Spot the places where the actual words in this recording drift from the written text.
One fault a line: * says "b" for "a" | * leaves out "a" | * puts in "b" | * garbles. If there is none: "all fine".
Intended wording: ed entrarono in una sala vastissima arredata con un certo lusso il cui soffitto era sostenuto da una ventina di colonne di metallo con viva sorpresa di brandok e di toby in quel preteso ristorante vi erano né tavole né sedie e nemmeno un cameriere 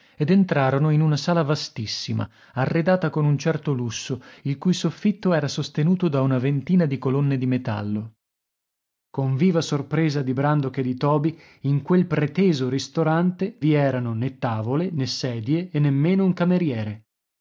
all fine